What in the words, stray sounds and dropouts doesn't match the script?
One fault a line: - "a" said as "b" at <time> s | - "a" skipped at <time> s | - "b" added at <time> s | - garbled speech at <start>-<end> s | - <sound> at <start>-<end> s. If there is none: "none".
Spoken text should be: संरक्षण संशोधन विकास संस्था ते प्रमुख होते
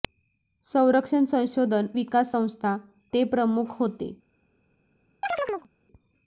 - chirp at 5.2-5.7 s